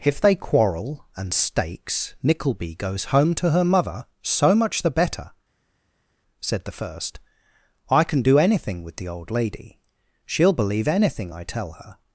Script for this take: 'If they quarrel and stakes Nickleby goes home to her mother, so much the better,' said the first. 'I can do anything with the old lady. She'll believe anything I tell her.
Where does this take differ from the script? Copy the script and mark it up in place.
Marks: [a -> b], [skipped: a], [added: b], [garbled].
'If they quarrel and stakes Nickleby goes home to her mother, so much the better,' said the first. 'I can do anything with the old lady. She'll believe anything I tell her.